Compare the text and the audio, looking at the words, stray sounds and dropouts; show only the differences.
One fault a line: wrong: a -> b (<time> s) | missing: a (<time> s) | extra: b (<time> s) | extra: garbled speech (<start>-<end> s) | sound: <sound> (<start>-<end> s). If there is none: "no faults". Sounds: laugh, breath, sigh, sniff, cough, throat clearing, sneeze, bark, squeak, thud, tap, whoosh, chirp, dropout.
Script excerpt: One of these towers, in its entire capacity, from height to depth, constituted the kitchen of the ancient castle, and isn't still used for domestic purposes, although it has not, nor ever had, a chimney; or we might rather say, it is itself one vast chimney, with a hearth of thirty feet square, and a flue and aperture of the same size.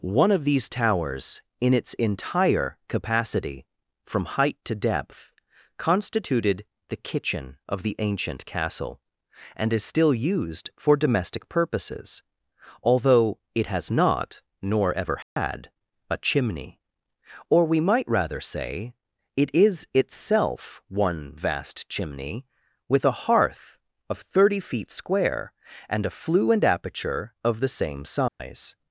wrong: isn't -> is (9.7 s)
sound: dropout (15.2-15.4 s)
sound: dropout (28.3-28.4 s)